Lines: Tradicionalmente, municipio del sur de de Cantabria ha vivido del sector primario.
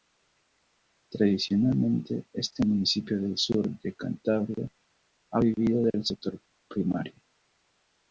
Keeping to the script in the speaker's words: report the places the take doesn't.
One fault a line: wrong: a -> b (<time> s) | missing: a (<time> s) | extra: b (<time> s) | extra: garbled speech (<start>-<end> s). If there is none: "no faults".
extra: este (2.3 s)
missing: de (3.9 s)